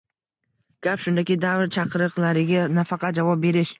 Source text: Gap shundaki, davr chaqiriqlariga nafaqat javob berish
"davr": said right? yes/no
yes